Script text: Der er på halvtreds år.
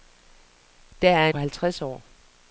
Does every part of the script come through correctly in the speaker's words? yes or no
yes